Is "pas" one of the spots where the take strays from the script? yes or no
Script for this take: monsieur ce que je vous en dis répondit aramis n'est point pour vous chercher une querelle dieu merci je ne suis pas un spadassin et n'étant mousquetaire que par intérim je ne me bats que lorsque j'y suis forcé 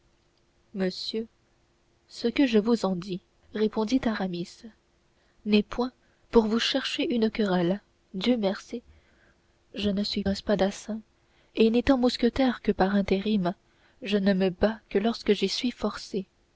yes